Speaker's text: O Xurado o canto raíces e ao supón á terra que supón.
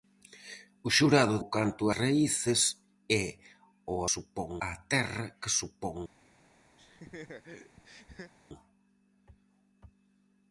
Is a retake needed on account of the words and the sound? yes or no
yes